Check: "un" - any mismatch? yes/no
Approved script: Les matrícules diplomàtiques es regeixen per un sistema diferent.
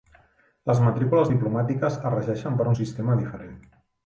no